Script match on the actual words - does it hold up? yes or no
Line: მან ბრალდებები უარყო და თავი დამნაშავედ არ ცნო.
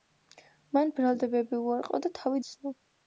no